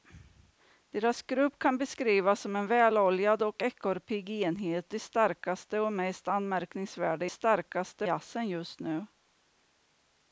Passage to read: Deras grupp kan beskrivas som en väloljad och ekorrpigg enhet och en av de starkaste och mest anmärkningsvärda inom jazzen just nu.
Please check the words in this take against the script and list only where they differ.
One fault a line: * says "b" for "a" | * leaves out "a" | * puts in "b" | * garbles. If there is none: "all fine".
* leaves out "och en av"
* says "starkaste" for "inom"